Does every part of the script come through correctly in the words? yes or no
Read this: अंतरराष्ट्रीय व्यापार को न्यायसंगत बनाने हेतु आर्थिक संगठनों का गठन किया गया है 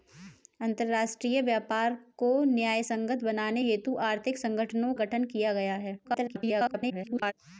no